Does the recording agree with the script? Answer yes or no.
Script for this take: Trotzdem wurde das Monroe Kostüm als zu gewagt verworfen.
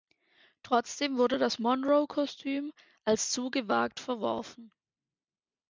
yes